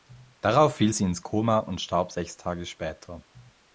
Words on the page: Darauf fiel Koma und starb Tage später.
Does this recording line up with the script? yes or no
no